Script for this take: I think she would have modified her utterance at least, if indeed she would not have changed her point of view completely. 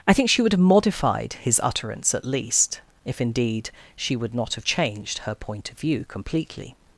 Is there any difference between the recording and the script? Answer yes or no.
yes